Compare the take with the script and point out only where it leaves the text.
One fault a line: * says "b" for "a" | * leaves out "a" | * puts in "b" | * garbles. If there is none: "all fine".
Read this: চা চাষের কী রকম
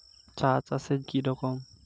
all fine